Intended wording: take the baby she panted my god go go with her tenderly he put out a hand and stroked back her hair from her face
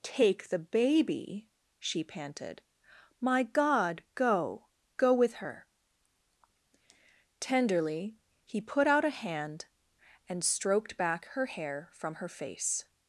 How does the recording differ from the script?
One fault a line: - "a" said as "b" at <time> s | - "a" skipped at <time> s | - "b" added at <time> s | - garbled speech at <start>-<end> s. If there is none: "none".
none